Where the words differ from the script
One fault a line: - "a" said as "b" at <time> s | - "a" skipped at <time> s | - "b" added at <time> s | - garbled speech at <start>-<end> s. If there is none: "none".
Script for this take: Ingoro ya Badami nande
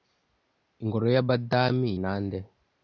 none